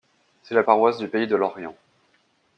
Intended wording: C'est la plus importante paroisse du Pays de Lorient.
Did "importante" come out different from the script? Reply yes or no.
yes